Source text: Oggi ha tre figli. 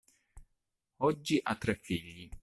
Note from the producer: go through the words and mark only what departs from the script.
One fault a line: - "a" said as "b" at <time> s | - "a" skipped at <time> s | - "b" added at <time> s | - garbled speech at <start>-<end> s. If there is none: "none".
none